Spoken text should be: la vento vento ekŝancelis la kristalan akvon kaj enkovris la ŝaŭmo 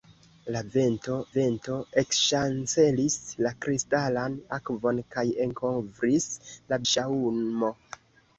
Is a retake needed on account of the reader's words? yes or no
no